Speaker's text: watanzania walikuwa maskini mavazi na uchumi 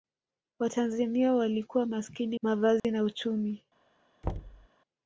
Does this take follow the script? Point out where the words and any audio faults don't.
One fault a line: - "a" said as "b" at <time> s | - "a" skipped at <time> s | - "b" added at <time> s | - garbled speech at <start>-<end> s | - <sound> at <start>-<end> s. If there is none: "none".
- dropout at 2.8-2.8 s
- thud at 4.2-4.7 s